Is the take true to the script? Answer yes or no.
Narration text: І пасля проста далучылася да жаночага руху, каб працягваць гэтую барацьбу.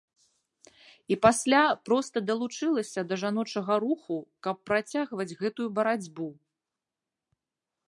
yes